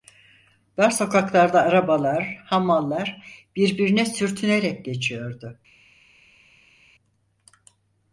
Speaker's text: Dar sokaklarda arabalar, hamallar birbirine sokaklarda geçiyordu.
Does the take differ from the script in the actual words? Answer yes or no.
yes